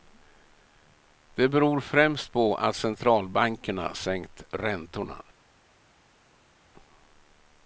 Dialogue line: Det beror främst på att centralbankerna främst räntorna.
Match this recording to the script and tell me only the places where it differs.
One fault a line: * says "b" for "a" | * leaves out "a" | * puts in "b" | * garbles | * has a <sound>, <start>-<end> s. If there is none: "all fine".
* says "sänkt" for "främst"